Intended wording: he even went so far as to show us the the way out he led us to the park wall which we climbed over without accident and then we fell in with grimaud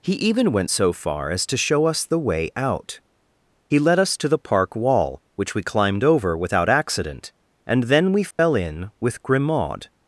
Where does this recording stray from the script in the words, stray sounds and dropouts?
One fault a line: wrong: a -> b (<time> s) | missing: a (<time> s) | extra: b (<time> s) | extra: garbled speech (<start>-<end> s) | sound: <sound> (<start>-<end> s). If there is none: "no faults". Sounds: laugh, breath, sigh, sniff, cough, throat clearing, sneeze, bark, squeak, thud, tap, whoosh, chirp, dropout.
missing: the (2.2 s)
sound: dropout (8.3-8.4 s)